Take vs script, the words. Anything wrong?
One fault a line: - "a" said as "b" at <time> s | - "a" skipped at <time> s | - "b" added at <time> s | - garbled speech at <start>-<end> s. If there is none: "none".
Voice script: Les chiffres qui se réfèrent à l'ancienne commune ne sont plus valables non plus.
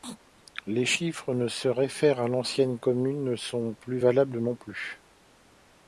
none